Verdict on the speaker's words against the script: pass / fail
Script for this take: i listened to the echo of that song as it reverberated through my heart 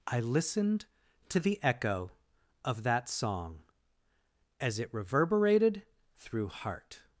fail